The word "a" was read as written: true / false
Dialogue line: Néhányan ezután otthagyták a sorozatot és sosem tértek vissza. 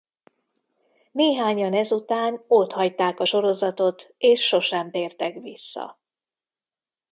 true